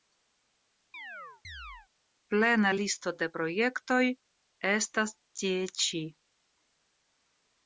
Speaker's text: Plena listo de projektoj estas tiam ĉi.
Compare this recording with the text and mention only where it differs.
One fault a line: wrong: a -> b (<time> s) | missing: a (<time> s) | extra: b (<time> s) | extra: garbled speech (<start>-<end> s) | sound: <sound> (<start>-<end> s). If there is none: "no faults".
sound: chirp (0.9-1.9 s)
wrong: tiam -> tie (5.4 s)